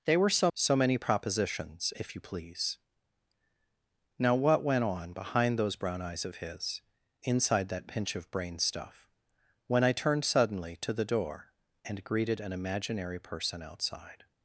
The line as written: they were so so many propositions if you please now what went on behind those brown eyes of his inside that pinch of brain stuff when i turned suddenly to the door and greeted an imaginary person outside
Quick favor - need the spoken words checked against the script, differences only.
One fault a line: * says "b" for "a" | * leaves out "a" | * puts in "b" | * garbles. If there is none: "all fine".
all fine